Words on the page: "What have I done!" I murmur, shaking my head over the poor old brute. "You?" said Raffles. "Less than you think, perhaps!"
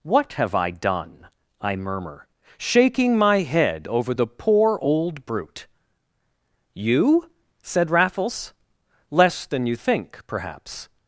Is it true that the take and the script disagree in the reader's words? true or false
false